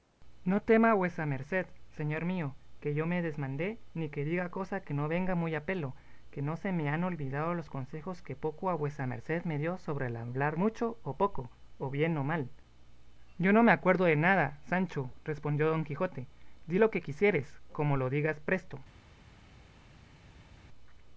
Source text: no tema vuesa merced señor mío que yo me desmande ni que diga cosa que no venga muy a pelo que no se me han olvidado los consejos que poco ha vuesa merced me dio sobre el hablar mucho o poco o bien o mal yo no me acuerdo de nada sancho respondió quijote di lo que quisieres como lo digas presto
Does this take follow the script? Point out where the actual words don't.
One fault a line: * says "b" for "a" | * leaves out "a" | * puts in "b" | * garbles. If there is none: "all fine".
* puts in "don"